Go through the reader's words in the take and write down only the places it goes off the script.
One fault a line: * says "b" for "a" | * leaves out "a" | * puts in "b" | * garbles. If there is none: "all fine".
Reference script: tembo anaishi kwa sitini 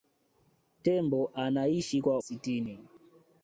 all fine